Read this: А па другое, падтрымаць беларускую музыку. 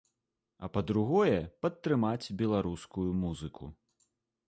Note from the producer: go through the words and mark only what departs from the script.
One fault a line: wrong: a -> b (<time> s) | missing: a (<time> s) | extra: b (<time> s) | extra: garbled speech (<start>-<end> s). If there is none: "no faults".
no faults